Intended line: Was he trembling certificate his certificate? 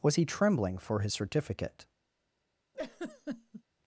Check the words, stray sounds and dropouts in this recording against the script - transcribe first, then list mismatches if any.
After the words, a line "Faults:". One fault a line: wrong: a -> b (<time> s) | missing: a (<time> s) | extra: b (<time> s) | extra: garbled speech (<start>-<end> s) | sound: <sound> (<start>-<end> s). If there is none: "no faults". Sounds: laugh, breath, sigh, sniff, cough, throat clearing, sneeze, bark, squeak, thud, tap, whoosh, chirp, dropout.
Was he trembling for his certificate?
Faults:
wrong: certificate -> for (0.8 s)
sound: laugh (2.7-3.6 s)